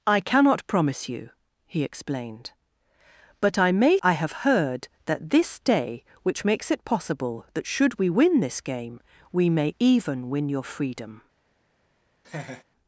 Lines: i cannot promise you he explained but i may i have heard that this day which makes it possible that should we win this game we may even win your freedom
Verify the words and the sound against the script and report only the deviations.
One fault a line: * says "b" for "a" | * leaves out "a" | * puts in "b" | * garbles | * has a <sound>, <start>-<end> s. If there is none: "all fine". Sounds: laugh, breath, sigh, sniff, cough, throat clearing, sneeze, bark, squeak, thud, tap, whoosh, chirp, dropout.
* has a laugh, 12.2-12.6 s